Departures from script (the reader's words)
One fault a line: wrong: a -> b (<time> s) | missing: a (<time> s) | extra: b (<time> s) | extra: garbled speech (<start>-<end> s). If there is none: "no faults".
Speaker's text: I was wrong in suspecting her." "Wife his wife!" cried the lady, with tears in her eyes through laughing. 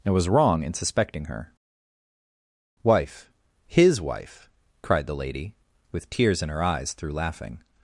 wrong: I -> and (0.0 s)